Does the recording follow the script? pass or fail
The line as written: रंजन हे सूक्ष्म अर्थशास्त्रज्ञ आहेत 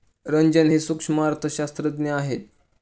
pass